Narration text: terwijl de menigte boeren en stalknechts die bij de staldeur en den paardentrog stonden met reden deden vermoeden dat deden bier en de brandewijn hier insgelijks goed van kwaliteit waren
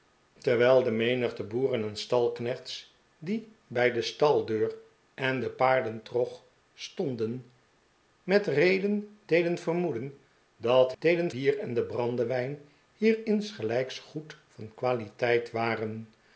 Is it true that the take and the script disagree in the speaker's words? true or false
false